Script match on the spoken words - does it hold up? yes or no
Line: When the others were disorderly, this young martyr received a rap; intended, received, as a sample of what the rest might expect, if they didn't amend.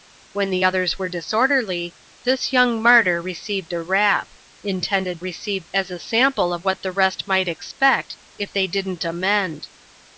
yes